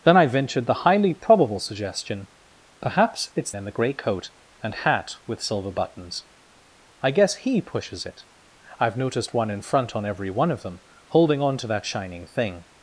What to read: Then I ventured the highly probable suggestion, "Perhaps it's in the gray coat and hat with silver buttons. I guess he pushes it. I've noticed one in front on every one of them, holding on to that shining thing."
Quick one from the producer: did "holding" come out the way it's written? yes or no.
yes